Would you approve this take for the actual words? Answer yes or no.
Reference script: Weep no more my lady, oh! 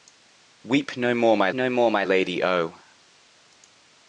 no